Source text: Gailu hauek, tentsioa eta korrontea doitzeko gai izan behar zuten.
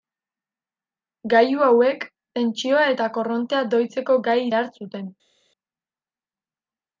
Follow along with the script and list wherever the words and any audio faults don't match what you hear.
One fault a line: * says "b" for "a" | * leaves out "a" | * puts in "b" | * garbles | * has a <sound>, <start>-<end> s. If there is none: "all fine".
* leaves out "izan"